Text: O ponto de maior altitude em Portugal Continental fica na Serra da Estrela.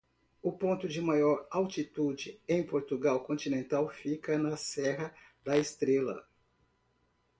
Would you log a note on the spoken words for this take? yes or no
no